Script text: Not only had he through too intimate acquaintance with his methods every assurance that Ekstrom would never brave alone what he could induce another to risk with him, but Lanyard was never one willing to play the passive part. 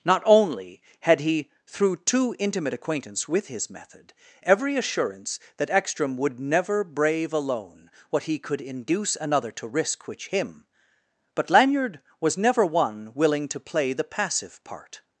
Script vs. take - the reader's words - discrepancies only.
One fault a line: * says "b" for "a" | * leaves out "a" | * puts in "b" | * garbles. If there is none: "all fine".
* says "method" for "methods"
* says "which" for "with"